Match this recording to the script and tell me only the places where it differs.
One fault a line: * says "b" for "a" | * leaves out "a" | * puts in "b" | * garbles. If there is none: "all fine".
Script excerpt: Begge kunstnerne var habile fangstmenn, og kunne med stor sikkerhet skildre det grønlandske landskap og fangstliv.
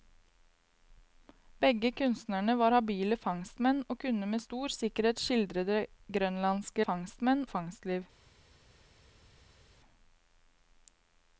* says "fangstmenn" for "landskap"